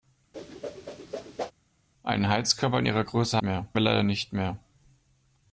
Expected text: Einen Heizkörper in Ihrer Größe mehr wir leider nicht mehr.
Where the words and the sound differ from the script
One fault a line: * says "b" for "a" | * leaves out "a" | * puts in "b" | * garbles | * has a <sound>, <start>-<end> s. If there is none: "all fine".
* has a whoosh, 0.3-1.5 s